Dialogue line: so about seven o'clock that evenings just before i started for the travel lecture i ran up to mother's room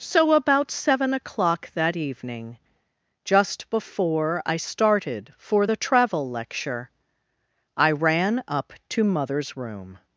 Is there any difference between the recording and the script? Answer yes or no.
yes